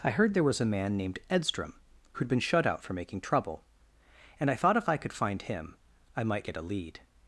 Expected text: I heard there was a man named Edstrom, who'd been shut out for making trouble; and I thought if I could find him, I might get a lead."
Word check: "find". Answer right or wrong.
right